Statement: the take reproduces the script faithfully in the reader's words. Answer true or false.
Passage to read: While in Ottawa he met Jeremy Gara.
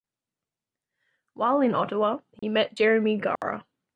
true